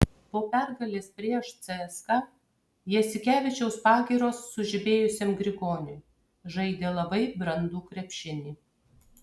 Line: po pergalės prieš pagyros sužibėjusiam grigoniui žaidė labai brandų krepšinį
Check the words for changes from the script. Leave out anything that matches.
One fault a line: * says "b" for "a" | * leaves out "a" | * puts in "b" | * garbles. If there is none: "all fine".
* puts in "cska jasikevičiaus"